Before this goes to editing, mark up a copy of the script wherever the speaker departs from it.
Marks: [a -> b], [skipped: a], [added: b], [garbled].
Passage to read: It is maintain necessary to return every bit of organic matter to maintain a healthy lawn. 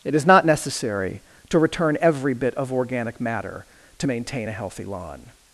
It is [maintain -> not] necessary to return every bit of organic matter to maintain a healthy lawn.